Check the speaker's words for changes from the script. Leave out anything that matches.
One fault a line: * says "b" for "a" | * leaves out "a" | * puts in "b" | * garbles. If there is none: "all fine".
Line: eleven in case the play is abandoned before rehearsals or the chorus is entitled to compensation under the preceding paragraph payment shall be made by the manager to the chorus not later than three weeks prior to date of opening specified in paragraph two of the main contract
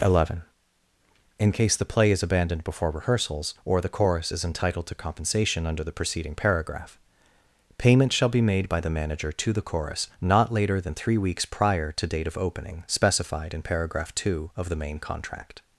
all fine